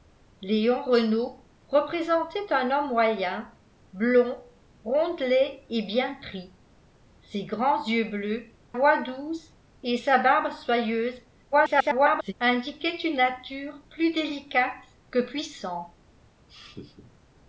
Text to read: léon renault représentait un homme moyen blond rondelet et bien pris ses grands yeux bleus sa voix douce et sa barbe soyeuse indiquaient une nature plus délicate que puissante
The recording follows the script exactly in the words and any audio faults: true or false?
false